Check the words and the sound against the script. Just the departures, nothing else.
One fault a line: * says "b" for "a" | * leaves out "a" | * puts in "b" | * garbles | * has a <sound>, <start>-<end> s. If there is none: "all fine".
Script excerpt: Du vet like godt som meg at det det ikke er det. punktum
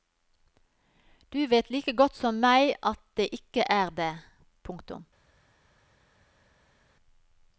* leaves out "det"